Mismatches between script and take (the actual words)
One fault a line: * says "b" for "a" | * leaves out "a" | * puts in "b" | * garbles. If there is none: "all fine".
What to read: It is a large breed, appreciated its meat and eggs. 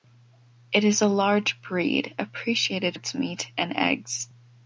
all fine